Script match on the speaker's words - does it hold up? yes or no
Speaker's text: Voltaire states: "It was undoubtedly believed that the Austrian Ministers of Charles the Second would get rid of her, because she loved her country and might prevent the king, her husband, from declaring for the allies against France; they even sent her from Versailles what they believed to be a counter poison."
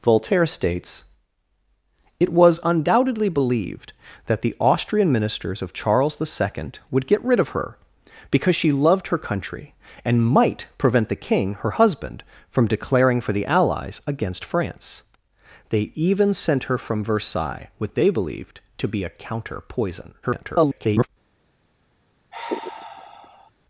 no